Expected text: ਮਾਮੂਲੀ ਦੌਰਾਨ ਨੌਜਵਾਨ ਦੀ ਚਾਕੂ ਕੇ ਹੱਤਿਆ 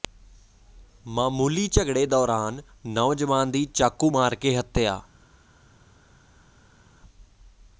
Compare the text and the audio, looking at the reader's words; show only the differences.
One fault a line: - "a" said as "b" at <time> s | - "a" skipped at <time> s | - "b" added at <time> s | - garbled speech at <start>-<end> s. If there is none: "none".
- "ਝਗੜੇ" added at 1.7 s
- "ਮਾਰ" added at 4.1 s